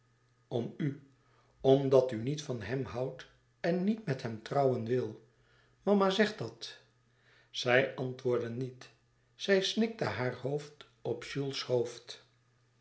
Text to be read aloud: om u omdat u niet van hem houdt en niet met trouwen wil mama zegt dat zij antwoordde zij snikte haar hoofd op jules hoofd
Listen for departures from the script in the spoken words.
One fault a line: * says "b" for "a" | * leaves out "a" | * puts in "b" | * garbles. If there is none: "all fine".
* puts in "hem"
* puts in "niet"